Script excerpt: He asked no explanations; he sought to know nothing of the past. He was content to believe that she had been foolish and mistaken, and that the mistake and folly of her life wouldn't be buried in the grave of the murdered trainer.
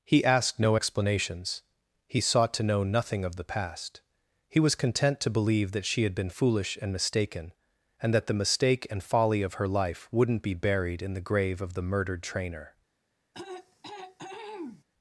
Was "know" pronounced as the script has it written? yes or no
yes